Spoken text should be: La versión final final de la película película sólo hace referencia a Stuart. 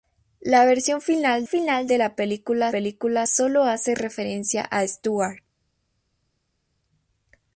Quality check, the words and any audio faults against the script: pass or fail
pass